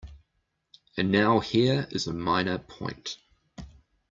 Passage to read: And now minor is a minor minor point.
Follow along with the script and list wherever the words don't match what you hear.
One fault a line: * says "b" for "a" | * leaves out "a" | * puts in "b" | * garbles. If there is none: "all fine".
* says "here" for "minor"
* leaves out "minor"